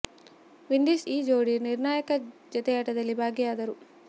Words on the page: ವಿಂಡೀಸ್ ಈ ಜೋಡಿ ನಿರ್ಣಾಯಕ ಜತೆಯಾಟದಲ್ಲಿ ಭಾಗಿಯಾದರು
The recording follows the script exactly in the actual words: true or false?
true